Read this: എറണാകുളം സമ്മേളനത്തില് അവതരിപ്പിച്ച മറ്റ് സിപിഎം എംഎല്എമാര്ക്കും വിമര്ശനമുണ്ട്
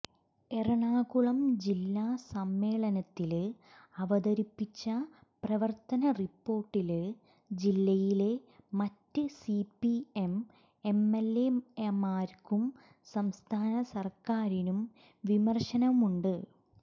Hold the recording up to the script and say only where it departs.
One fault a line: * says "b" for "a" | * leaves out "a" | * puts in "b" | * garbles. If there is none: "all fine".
* puts in "ജില്ലാ"
* puts in "പ്രവര്ത്തന റിപ്പോര്ട്ടില് ജില്ലയിലെ"
* puts in "സംസ്ഥാന സര്ക്കാരിനും"